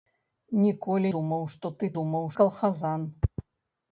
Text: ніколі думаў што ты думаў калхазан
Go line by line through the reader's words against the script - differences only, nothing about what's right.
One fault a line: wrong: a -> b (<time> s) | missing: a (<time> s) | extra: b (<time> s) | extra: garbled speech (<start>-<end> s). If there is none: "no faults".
no faults